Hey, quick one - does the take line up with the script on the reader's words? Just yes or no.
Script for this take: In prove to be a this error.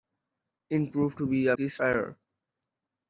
yes